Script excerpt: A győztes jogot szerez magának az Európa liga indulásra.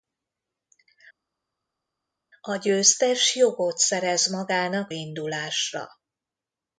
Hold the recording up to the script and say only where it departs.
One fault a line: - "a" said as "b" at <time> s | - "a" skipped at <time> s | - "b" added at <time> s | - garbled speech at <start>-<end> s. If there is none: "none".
- "az Európa liga" skipped at 4.9 s